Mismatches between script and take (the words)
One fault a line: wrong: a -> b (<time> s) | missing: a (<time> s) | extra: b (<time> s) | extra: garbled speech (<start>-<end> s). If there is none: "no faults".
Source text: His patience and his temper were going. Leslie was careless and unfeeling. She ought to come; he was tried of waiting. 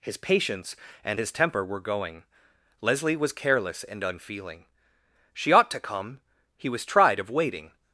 no faults